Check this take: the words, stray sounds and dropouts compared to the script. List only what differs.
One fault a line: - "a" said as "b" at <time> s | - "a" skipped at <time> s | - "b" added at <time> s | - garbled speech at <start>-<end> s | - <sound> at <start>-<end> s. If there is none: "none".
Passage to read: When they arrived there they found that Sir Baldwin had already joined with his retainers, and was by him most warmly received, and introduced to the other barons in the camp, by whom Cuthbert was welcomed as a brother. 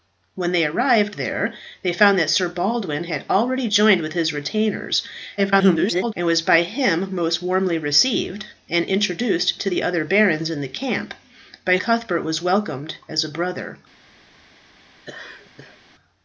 - garbled speech at 5.4-6.1 s
- "whom" skipped at 11.8 s
- laugh at 15.0-15.8 s